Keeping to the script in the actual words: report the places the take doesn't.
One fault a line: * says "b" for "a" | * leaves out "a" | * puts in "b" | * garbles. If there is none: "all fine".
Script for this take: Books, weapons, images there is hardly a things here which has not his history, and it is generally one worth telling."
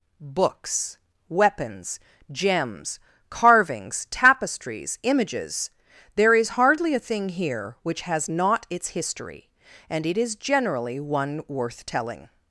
* puts in "gems carvings tapestries"
* says "thing" for "things"
* says "its" for "his"